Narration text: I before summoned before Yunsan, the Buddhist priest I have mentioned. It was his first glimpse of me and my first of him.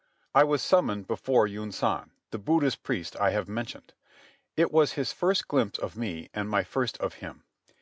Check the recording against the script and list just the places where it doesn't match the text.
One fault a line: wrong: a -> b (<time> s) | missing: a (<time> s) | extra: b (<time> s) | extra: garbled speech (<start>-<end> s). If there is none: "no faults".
wrong: before -> was (0.4 s)